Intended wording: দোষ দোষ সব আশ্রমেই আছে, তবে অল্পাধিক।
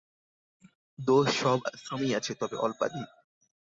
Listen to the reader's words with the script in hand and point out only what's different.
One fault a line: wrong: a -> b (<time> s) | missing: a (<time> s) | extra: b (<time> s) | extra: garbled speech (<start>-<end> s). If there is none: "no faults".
missing: দোষ (1.3 s)